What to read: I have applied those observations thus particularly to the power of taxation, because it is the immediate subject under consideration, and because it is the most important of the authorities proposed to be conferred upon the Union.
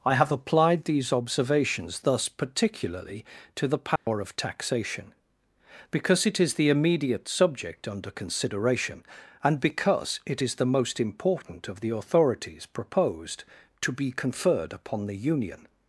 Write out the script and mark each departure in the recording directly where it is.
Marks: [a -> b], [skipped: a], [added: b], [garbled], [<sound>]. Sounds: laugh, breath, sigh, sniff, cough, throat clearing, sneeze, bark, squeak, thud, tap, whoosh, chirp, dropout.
I have applied [those -> these] observations thus particularly to the power [dropout] of taxation, because it is the immediate subject under consideration, and because it is the most important of the authorities proposed to be conferred upon the Union.